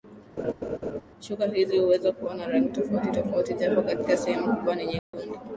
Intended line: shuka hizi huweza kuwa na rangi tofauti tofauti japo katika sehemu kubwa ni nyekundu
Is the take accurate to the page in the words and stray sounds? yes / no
no